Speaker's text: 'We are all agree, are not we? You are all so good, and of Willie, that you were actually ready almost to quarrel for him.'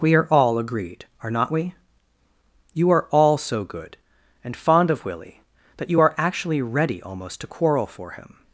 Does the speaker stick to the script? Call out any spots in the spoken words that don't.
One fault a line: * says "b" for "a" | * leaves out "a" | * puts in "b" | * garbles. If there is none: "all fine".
* says "agreed" for "agree"
* puts in "fond"
* says "are" for "were"